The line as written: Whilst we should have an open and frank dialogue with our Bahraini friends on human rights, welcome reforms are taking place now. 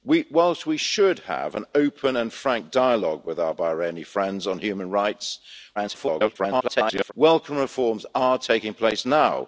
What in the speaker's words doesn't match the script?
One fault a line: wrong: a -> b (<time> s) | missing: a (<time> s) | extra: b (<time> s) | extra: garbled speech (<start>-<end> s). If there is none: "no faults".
extra: garbled speech (5.8-7.1 s)